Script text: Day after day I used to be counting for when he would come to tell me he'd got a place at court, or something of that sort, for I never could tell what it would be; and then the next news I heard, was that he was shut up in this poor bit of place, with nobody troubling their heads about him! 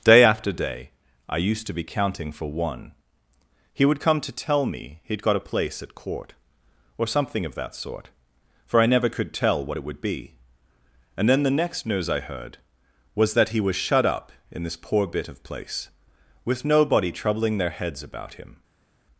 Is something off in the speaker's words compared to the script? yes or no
yes